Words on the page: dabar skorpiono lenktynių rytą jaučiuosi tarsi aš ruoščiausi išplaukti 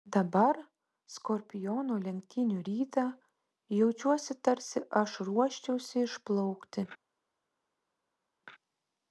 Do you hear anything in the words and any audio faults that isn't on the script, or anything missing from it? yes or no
no